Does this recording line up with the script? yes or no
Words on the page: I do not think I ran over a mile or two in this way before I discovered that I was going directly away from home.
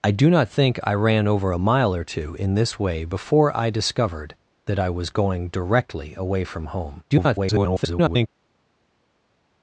no